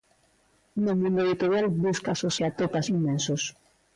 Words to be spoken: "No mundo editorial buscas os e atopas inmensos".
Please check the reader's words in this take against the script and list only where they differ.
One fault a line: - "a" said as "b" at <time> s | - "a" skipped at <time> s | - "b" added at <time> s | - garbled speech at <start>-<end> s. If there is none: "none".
none